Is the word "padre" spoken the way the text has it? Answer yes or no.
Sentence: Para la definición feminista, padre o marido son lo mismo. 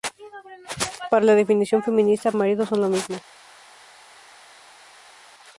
no